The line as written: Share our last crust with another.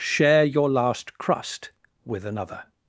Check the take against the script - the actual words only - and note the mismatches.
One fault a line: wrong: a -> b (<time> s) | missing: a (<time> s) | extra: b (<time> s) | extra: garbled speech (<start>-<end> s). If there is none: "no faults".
wrong: our -> your (0.4 s)